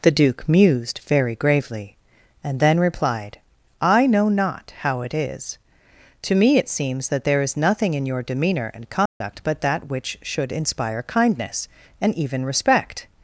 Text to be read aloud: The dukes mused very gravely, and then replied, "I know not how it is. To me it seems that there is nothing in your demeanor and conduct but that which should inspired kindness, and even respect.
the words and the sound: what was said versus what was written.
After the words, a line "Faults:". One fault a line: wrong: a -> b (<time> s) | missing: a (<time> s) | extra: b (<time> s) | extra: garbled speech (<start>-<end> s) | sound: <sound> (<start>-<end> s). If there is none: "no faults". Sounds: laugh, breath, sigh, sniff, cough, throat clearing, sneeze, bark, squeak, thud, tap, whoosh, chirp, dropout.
The duke mused very gravely, and then replied, "I know not how it is. To me it seems that there is nothing in your demeanor and conduct but that which should inspire kindness, and even respect.
Faults:
wrong: dukes -> duke (0.1 s)
sound: dropout (9.1-9.2 s)
wrong: inspired -> inspire (10.5 s)